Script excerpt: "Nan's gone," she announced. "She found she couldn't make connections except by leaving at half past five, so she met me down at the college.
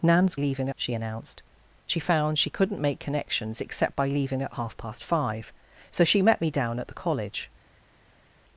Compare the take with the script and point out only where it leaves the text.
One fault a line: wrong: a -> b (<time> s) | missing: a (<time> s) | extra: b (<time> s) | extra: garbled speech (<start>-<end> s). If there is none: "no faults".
wrong: gone -> leaving (0.4 s)